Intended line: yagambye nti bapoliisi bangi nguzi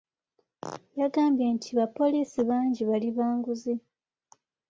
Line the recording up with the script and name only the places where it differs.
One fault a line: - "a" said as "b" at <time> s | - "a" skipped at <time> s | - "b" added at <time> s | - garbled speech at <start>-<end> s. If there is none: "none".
- "bali ba" added at 2.9 s